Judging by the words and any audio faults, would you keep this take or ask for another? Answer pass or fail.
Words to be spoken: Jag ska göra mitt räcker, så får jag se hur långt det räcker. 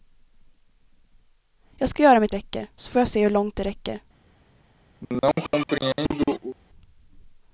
fail